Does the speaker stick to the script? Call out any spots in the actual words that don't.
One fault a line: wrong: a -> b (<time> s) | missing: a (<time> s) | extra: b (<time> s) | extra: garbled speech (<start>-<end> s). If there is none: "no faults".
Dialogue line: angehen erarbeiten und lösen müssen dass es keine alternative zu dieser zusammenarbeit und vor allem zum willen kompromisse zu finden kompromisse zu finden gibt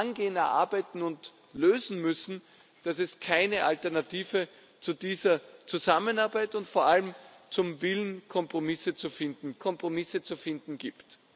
no faults